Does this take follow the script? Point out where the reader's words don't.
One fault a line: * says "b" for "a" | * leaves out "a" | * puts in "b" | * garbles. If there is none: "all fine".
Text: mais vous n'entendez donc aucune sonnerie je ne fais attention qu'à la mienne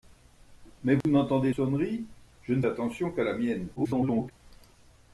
* leaves out "donc aucune"
* leaves out "fais"
* garbles